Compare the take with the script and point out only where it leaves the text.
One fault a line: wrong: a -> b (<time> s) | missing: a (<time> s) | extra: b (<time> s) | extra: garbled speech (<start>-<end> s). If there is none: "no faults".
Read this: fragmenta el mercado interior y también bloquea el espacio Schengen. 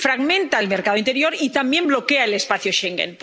no faults